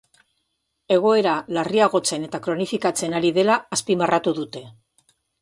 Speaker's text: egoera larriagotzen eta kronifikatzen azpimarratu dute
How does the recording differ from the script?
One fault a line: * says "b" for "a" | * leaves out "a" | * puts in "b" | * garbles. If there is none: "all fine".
* puts in "ari dela"